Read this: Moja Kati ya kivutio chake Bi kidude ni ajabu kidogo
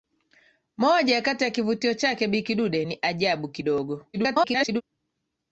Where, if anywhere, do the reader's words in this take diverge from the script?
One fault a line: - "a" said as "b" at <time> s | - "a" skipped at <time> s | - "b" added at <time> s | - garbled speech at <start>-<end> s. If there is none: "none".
- garbled speech at 4.1-4.8 s